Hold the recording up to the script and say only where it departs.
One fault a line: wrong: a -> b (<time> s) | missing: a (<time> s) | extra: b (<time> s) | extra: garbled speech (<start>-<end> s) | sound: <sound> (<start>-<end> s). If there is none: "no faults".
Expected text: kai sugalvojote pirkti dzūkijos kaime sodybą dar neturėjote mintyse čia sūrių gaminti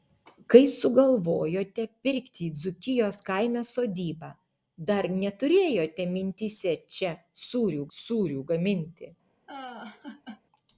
extra: sūrių (8.0 s)
sound: laugh (9.5-10.4 s)